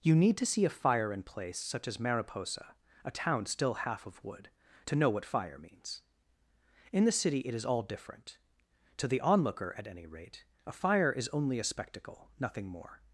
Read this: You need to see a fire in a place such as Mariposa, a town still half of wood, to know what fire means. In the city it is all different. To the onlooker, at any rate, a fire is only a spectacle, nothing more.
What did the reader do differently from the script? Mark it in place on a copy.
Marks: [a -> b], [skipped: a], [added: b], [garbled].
You need to see a fire in [skipped: a] place such as Mariposa, a town still half of wood, to know what fire means. In the city it is all different. To the onlooker, at any rate, a fire is only a spectacle, nothing more.